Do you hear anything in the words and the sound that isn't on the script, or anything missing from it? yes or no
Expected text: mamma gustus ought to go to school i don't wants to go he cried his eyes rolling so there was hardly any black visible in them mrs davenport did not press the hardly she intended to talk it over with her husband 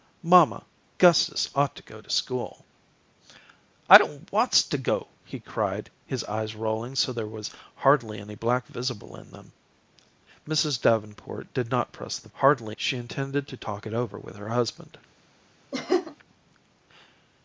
yes